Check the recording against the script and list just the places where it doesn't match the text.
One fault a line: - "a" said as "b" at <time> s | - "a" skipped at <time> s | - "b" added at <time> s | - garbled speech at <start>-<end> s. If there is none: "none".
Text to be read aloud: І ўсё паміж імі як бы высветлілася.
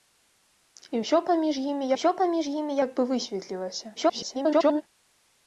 - "ўсё паміж імі" added at 1.9 s
- garbled speech at 4.0-4.8 s